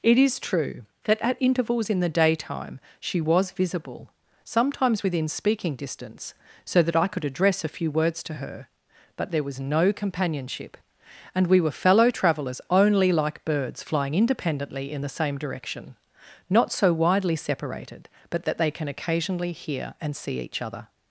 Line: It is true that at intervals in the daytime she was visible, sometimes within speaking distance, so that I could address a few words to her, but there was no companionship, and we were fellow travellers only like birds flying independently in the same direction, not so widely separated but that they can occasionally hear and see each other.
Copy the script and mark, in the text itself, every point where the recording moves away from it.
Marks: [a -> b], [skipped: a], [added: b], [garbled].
It is true that at intervals in the daytime she was visible, sometimes within speaking distance, so that I could address a few words to her, but there was no companionship, and we were fellow travellers only like birds flying independently in the same direction, not so widely separated but that they can occasionally hear and see each other.